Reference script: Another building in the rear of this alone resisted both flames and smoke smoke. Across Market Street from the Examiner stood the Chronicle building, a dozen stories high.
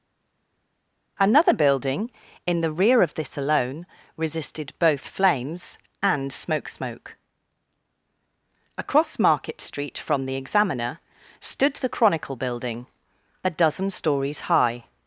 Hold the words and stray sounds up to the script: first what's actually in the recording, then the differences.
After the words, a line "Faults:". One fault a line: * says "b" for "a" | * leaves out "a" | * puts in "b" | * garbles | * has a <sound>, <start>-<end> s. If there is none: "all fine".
Another building in the rear of this alone resisted both flames and smoke smoke. Across Market Street from the Examiner stood the Chronicle building, a dozen stories high.
Faults:
all fine